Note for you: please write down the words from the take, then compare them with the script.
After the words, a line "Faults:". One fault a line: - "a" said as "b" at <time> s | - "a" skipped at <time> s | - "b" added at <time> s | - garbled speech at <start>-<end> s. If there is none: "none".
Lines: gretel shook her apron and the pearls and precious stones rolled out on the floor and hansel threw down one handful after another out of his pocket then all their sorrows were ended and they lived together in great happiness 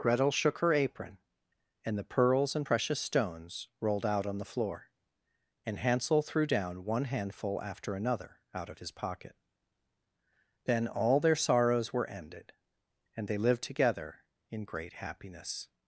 gretel shook her apron and the pearls and precious stones rolled out on the floor and hansel threw down one handful after another out of his pocket then all their sorrows were ended and they lived together in great happiness
Faults:
none